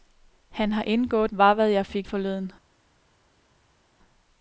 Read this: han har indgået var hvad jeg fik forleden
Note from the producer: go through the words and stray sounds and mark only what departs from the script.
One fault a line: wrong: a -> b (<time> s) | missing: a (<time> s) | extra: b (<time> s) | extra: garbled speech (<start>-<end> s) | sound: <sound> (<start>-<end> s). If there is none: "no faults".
no faults